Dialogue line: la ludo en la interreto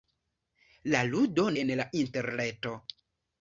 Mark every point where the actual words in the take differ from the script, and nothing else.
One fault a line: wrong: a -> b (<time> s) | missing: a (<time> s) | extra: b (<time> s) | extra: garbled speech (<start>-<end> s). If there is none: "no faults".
no faults